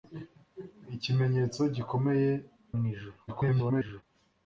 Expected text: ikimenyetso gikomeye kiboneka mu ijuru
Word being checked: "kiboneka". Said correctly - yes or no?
no